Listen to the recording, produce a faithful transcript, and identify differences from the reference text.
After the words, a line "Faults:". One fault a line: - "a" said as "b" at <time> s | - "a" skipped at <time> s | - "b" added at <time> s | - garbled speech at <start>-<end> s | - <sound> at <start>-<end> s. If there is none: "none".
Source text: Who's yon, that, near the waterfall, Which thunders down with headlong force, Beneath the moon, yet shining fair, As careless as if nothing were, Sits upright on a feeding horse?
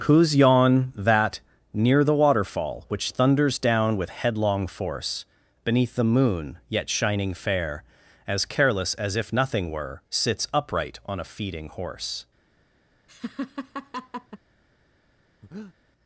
Who's yon, that, near the waterfall, Which thunders down with headlong force, Beneath the moon, yet shining fair, As careless as if nothing were, Sits upright on a feeding horse?
Faults:
- laugh at 13.1-14.4 s
- breath at 15.4-15.7 s